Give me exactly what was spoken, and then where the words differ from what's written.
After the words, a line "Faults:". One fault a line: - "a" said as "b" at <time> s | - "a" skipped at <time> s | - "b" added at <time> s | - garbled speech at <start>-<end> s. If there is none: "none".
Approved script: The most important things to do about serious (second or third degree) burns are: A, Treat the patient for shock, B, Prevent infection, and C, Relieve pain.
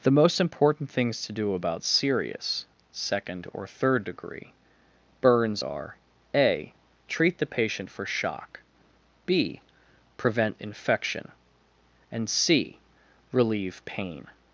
The most important things to do about serious (second or third degree) burns are: A, Treat the patient for shock, B, Prevent infection, and C, Relieve pain.
Faults:
none